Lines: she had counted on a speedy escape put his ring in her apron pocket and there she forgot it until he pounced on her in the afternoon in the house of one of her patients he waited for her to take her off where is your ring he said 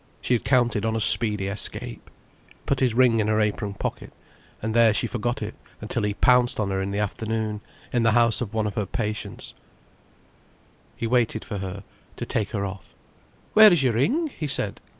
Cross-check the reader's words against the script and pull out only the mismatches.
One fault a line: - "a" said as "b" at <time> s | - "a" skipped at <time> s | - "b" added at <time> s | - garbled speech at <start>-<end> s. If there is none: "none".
none